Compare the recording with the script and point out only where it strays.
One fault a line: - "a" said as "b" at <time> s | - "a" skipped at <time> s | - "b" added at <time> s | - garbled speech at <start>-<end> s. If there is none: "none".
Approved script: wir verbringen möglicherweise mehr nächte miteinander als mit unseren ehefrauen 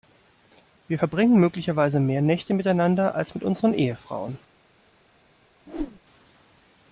none